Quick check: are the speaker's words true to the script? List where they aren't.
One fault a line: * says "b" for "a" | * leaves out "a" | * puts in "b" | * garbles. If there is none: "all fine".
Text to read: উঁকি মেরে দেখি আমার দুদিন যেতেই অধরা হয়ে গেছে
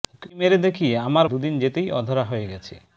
all fine